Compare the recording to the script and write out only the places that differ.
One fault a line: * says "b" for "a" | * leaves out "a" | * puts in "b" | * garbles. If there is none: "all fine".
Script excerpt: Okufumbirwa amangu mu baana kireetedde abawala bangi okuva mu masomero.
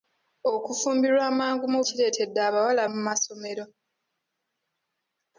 * leaves out "baana"
* leaves out "bangi okuva"